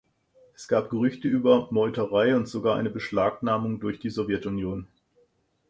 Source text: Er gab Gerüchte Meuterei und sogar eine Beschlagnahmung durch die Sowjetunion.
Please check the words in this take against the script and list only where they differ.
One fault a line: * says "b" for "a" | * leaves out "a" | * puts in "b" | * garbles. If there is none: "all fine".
* says "Es" for "Er"
* puts in "über"